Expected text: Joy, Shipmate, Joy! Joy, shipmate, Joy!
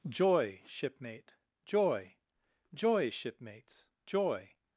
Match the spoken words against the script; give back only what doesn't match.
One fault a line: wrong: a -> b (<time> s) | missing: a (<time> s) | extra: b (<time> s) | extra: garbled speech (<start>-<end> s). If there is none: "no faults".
wrong: shipmate -> shipmates (3.1 s)